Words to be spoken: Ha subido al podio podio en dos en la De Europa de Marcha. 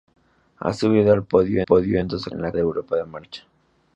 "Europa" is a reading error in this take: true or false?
false